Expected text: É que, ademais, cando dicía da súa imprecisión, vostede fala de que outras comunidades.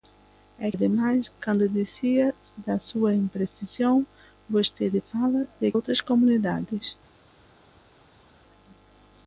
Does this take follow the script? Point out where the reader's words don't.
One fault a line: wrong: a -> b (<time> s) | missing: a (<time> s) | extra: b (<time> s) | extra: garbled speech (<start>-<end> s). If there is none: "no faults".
missing: que (0.7 s)
missing: que (5.7 s)